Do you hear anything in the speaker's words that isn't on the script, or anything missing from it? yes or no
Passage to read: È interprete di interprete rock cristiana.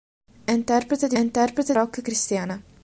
no